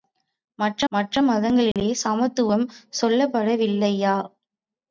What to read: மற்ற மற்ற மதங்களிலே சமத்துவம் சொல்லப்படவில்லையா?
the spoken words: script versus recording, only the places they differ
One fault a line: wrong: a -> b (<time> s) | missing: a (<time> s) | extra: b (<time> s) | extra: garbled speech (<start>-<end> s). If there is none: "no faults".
no faults